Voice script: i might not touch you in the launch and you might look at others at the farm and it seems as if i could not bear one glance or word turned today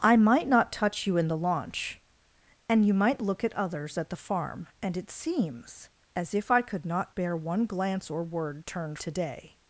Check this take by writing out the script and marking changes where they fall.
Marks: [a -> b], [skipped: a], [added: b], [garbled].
i might not touch you in the launch and you might look at others at the farm and it seems as if i could not bear one glance or word turned today